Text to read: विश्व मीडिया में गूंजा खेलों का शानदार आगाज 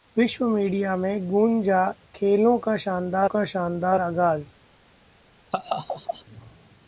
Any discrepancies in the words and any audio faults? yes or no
yes